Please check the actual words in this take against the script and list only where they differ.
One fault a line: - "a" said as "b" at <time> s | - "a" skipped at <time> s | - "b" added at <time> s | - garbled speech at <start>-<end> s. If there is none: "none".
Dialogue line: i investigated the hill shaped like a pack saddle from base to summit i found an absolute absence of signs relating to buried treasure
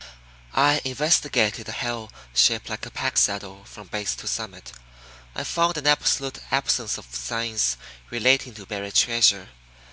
none